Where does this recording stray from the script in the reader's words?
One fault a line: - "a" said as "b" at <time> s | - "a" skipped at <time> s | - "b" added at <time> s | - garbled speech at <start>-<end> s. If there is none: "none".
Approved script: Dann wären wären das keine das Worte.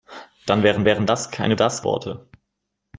none